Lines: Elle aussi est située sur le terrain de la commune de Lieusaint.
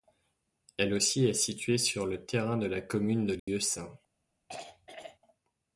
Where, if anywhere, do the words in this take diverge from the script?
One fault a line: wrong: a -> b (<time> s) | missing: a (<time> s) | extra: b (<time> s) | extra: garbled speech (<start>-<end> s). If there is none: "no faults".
no faults